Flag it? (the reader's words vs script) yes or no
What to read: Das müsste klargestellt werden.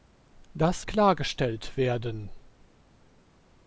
yes